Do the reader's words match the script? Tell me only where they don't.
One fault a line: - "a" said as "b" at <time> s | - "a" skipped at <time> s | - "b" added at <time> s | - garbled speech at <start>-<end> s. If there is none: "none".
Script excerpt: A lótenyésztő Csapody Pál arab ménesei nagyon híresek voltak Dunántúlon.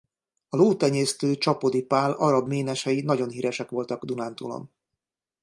none